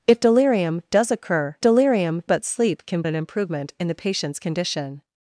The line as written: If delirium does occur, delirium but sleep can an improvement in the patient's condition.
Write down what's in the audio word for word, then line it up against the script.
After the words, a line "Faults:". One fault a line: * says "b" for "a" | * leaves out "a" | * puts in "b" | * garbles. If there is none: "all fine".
If delirium does occur, delirium but sleep can an improvement in the patient's condition.
Faults:
all fine